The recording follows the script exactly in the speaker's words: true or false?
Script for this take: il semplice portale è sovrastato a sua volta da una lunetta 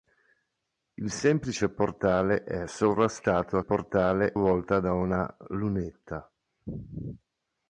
false